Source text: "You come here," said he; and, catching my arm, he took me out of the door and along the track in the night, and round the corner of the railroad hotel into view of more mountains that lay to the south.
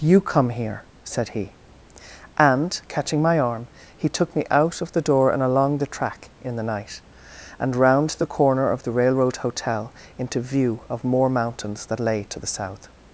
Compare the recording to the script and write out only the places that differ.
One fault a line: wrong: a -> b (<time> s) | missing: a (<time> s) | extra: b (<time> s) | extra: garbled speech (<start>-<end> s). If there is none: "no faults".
no faults